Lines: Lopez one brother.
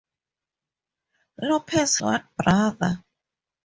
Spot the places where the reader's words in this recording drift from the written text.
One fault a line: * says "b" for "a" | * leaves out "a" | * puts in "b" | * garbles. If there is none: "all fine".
all fine